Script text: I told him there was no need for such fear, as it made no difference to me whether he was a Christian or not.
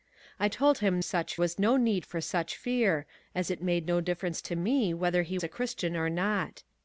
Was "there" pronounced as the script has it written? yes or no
no